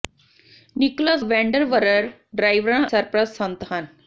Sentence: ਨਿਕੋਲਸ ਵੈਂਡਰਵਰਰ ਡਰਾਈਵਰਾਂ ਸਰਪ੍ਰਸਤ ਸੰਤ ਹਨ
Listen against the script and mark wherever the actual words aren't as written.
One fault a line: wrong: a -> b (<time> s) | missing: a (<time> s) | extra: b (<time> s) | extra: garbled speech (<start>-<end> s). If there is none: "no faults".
no faults